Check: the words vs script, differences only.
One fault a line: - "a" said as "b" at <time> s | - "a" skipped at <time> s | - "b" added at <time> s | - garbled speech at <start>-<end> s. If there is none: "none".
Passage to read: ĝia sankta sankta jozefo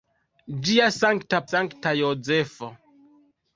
none